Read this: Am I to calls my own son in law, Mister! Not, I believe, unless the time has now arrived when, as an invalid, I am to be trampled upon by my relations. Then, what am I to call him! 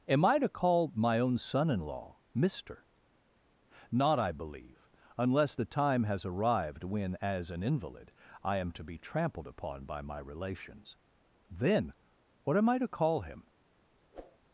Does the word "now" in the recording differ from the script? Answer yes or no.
yes